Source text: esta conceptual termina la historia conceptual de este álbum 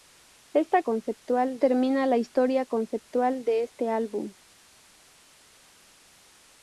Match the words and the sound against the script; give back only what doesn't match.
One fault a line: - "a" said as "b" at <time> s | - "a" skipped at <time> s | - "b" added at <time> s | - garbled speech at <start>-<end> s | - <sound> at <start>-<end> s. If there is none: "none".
none